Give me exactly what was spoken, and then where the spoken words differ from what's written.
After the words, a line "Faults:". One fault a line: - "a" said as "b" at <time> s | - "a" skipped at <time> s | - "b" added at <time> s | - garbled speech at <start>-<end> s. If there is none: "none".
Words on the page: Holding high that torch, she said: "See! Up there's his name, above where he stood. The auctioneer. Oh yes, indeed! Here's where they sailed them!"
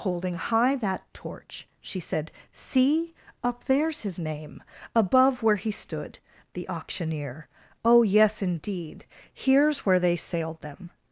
Holding high that torch, she said: "See! Up there's his name, above where he stood. The auctioneer. Oh yes, indeed! Here's where they sailed them!"
Faults:
none